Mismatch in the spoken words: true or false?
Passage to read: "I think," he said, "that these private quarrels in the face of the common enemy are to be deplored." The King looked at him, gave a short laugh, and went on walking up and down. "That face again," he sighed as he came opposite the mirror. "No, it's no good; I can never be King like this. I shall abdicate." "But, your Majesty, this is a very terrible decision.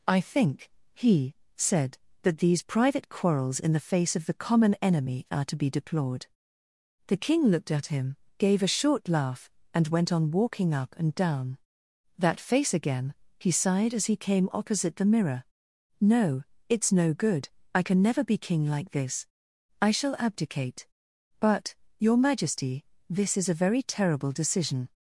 false